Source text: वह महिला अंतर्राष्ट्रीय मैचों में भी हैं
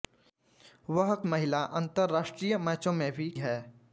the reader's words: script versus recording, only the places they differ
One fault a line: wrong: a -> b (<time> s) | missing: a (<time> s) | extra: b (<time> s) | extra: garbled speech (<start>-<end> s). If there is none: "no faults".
no faults